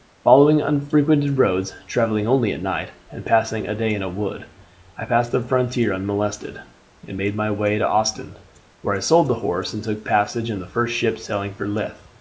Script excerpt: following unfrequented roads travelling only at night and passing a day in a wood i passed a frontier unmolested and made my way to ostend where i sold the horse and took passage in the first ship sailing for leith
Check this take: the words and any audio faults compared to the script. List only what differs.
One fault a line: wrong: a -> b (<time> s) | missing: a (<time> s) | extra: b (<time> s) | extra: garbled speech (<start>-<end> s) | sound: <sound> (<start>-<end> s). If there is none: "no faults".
wrong: a -> the (5.3 s)